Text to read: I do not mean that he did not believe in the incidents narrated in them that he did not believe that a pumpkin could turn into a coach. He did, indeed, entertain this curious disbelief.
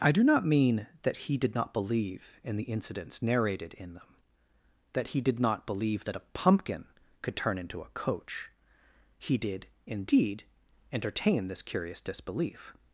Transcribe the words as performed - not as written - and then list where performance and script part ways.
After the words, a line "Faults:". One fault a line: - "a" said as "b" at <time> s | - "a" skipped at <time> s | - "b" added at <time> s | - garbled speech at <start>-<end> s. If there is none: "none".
I do not mean that he did not believe in the incidents narrated in them that he did not believe that a pumpkin could turn into a coach. He did, indeed, entertain this curious disbelief.
Faults:
none